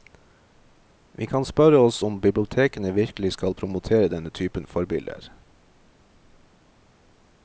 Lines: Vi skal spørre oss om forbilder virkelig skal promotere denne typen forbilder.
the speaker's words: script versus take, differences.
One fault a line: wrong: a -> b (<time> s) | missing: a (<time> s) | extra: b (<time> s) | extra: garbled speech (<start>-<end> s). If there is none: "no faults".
wrong: skal -> kan (1.2 s)
wrong: forbilder -> bibliotekene (2.2 s)